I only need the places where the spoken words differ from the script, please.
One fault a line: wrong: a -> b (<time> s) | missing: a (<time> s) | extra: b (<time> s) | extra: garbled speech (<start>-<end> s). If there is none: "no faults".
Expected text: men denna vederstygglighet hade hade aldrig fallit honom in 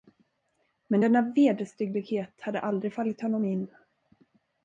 missing: hade (2.6 s)